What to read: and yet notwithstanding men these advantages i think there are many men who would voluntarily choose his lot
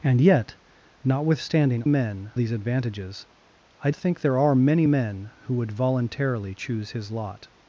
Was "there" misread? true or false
false